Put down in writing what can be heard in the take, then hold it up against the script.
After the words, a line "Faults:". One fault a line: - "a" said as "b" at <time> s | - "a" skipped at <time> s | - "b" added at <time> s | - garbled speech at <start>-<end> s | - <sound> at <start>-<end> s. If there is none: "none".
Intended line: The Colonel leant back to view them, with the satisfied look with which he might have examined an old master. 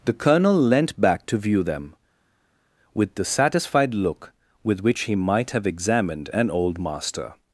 The Colonel leant back to view them, with the satisfied look with which he might have examined an old master.
Faults:
none